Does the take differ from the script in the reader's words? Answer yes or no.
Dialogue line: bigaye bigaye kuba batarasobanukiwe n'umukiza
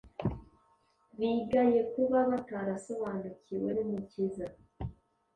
yes